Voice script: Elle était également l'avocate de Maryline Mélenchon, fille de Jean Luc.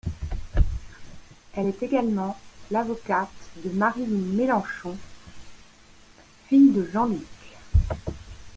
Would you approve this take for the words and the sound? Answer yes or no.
no